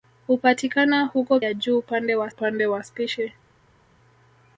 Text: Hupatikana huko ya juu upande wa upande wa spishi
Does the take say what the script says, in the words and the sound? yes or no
yes